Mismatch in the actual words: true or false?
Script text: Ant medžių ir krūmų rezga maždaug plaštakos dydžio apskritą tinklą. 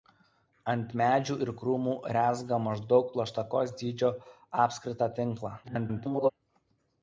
true